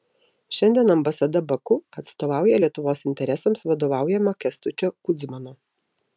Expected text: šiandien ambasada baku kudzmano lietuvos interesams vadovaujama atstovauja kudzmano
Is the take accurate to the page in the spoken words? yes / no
no